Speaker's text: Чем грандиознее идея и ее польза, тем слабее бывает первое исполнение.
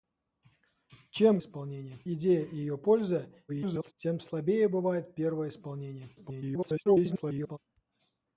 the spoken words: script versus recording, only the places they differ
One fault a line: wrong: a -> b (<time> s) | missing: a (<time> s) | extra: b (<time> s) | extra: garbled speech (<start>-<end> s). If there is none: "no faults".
wrong: грандиознее -> исполнение (1.4 s)
extra: garbled speech (3.5-3.9 s)
extra: garbled speech (6.2-7.6 s)